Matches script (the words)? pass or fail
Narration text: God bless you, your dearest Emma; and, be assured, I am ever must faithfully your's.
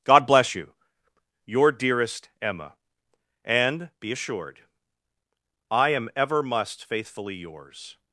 pass